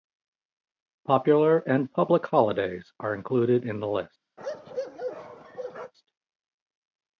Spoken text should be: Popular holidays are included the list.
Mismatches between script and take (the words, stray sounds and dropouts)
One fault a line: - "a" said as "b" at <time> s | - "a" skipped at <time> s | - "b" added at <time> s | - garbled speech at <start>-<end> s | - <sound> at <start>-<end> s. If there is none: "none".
- "and public" added at 1.7 s
- "in" added at 3.7 s
- bark at 4.4-5.9 s